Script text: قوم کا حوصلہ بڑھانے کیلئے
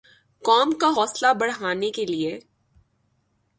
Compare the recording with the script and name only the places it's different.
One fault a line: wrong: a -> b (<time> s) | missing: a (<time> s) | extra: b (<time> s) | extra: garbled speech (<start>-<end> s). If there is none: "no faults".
no faults